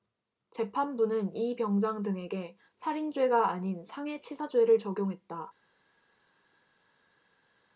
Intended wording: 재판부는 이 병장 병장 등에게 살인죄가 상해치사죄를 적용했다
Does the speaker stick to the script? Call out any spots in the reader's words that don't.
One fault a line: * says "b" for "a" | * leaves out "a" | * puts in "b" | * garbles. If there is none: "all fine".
* leaves out "병장"
* puts in "아닌"